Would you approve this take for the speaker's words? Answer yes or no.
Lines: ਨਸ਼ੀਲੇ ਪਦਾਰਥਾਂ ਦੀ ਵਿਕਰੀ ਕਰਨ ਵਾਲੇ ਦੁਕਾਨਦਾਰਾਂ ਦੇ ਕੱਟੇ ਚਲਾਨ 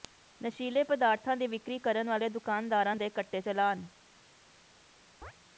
yes